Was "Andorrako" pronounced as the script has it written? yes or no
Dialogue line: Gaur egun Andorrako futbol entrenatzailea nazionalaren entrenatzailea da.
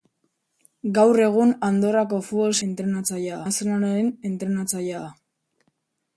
yes